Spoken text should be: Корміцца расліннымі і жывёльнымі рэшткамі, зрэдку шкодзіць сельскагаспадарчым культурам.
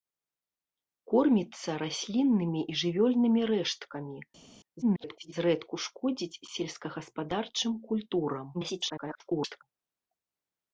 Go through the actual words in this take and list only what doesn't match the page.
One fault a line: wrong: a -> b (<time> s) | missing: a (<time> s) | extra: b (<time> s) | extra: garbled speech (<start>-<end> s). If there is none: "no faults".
extra: garbled speech (4.8-5.3 s)
extra: garbled speech (8.5-9.6 s)